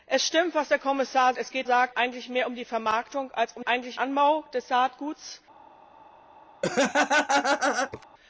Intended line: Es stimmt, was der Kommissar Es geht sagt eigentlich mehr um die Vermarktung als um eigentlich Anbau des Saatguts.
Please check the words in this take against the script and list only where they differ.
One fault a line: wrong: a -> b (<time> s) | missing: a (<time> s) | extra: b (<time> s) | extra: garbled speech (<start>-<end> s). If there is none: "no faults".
no faults